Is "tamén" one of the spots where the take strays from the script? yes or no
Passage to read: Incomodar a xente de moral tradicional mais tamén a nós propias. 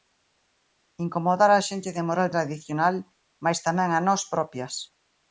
no